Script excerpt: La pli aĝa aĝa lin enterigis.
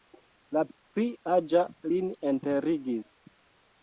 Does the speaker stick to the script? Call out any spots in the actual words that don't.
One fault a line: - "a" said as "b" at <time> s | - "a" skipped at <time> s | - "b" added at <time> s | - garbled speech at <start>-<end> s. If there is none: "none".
- "aĝa" skipped at 1.6 s